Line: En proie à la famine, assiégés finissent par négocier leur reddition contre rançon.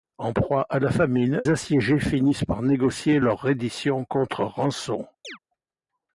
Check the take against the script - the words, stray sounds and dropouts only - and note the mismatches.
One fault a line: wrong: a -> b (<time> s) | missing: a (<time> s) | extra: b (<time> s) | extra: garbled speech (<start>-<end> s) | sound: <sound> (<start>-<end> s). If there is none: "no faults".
sound: chirp (5.2-5.4 s)